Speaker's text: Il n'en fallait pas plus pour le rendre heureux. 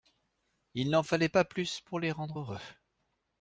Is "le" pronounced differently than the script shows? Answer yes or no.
yes